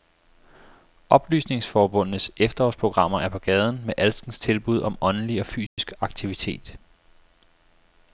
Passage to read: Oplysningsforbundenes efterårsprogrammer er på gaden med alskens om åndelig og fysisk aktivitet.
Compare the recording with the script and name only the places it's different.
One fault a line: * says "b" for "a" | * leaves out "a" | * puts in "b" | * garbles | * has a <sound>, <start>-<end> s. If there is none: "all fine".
* puts in "tilbud"
* has a dropout, 5.7-5.8 s